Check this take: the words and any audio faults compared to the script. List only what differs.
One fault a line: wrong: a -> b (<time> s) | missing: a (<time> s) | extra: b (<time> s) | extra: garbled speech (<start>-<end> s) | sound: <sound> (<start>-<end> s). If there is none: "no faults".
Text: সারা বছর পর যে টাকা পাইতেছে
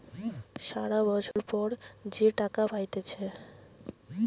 sound: dropout (1.3-1.4 s)